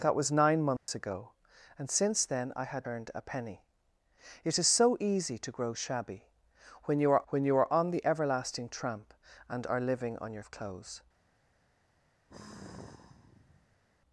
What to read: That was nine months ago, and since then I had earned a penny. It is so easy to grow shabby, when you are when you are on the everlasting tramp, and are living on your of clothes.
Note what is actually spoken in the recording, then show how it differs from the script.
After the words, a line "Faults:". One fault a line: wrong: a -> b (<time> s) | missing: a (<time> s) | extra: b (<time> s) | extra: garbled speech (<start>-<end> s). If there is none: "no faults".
That was nine months ago, and since then I had earned a penny. It is so easy to grow shabby, when you are when you are on the everlasting tramp, and are living on your of clothes.
Faults:
no faults